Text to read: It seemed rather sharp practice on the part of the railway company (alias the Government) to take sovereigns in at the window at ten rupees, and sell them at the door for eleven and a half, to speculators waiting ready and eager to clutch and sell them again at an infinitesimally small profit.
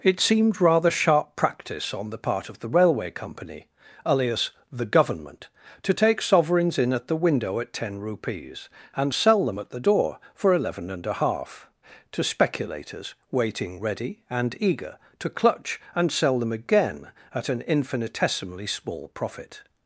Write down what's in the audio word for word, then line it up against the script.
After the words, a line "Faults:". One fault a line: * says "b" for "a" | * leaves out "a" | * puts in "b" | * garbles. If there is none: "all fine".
It seemed rather sharp practice on the part of the railway company (alias the Government) to take sovereigns in at the window at ten rupees, and sell them at the door for eleven and a half, to speculators waiting ready and eager to clutch and sell them again at an infinitesimally small profit.
Faults:
all fine